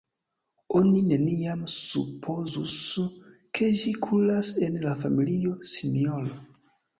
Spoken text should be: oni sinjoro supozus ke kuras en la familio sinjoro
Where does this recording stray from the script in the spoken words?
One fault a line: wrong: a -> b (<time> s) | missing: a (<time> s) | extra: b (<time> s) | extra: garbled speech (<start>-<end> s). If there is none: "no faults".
wrong: sinjoro -> neniam (1.1 s)
extra: ĝi (3.8 s)